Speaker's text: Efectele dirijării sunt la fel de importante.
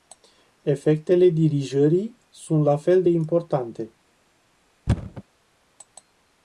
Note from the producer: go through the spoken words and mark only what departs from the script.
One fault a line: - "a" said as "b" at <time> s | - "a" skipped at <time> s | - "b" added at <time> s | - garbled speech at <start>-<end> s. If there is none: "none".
none